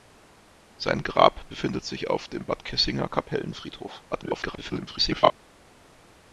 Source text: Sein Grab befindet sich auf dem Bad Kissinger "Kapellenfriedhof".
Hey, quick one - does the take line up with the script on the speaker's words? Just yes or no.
no